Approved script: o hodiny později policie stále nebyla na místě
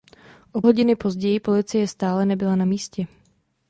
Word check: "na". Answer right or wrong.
right